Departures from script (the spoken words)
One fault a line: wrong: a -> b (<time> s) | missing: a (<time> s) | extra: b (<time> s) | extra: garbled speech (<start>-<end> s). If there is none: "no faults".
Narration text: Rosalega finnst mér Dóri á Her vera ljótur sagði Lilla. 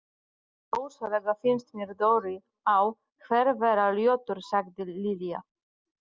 no faults